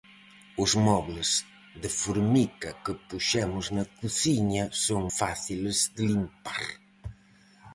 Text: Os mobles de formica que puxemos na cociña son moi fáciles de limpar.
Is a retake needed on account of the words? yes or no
yes